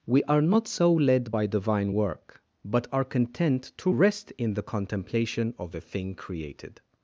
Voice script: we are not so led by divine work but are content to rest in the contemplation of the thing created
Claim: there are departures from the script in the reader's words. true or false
false